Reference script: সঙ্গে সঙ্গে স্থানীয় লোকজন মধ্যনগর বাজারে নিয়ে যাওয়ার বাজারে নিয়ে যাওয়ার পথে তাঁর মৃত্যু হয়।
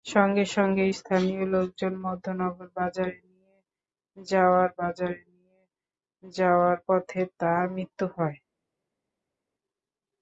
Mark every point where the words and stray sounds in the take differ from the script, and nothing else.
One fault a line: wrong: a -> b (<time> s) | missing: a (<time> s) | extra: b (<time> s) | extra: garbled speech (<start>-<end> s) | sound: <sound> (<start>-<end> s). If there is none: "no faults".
no faults